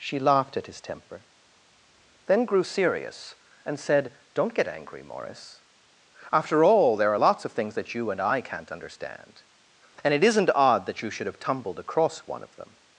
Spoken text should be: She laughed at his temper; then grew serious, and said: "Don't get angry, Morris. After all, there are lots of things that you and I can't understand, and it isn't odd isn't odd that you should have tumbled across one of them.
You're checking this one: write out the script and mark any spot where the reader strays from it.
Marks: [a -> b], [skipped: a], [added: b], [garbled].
She laughed at his temper; then grew serious, and said: "Don't get angry, Morris. After all, there are lots of things that you and I can't understand, and it isn't odd [skipped: isn't odd] that you should have tumbled across one of them.